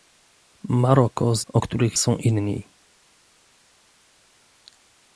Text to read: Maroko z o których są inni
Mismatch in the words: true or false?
false